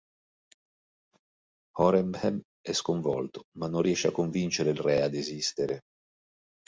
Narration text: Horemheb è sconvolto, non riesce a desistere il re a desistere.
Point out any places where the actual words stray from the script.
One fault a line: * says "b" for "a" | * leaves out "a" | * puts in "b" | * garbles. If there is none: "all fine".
* puts in "ma"
* says "convincere" for "desistere"